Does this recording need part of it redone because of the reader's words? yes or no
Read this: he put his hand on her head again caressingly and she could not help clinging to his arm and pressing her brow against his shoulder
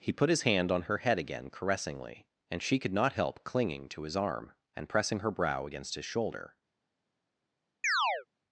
no